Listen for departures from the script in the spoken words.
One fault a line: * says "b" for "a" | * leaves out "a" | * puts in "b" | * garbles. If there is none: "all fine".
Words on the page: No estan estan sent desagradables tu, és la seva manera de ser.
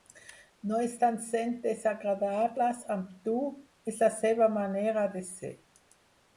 * leaves out "estan"
* puts in "amb"